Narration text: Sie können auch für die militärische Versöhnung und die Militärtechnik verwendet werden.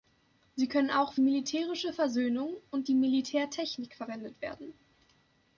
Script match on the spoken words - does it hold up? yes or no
no